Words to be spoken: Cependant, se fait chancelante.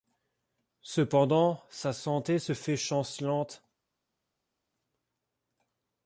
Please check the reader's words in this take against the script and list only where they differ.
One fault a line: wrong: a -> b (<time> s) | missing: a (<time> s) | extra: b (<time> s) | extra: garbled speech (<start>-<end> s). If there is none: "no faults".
extra: sa santé (1.7 s)